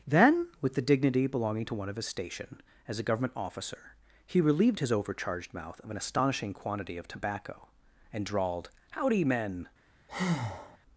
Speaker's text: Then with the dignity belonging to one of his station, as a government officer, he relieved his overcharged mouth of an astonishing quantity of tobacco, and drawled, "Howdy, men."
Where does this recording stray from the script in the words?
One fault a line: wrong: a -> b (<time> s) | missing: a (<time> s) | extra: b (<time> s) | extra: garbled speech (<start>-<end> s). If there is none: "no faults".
no faults